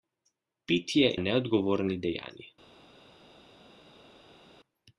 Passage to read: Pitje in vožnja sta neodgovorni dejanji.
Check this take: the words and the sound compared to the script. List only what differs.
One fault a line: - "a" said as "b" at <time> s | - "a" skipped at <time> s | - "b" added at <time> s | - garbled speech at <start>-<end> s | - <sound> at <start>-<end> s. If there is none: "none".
- "in vožnja sta" skipped at 1.1 s